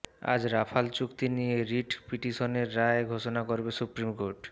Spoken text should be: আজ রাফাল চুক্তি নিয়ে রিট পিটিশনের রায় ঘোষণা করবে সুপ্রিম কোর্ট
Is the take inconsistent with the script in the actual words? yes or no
no